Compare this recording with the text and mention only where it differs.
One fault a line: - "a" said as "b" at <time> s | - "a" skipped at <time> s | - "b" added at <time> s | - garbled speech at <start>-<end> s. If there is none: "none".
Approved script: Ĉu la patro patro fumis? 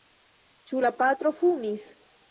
- "patro" skipped at 1.3 s